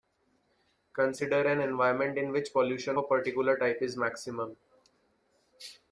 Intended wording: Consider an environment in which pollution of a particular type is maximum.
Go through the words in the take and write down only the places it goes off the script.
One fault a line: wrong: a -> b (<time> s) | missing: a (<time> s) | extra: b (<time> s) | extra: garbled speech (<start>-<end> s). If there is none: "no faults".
missing: of (3.0 s)